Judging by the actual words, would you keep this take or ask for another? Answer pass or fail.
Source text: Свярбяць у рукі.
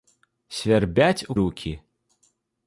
pass